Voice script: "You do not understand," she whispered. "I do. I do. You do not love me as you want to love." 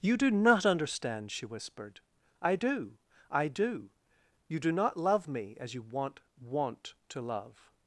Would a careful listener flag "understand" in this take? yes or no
no